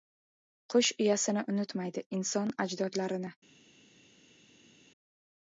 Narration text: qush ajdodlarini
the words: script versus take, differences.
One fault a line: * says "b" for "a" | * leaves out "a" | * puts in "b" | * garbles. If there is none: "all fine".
* puts in "uyasini unutmaydi inson"